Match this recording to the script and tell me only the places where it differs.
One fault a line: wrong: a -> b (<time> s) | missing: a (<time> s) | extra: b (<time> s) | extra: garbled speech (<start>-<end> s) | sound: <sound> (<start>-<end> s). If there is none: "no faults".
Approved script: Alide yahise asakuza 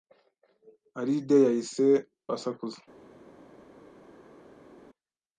no faults